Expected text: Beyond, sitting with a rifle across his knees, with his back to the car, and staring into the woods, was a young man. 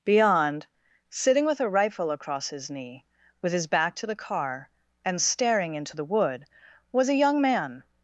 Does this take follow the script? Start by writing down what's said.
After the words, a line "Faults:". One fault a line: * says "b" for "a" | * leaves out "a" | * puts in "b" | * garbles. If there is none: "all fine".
Beyond, sitting with a rifle across his knee, with his back to the car, and staring into the wood, was a young man.
Faults:
* says "knee" for "knees"
* says "wood" for "woods"